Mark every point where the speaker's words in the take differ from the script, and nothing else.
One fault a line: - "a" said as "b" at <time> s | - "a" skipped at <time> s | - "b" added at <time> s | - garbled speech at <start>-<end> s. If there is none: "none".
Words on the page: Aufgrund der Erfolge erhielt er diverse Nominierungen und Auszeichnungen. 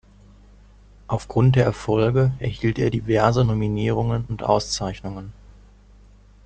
none